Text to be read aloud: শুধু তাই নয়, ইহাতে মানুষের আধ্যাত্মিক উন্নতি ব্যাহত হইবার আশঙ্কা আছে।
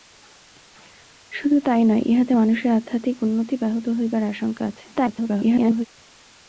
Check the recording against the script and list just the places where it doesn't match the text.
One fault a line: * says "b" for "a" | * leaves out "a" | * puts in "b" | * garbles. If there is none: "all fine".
* garbles